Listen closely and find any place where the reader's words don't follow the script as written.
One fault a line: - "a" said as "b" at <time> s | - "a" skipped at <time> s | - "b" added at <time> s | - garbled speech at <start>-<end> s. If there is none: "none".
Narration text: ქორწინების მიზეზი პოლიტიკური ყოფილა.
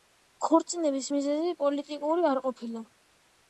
- "არ" added at 2.3 s